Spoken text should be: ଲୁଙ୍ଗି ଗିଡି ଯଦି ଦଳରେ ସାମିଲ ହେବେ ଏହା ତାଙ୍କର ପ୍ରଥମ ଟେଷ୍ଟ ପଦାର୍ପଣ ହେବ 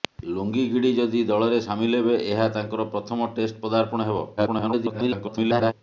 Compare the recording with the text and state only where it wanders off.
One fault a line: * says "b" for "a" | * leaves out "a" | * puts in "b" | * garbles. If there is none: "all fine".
* garbles